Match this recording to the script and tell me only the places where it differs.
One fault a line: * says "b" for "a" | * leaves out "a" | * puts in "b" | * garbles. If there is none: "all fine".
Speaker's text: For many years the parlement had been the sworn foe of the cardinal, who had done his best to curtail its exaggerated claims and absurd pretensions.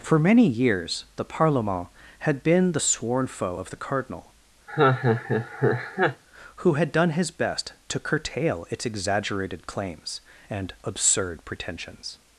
all fine